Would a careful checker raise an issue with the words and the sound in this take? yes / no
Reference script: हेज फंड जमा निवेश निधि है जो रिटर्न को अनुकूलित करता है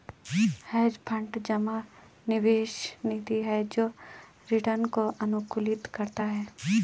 no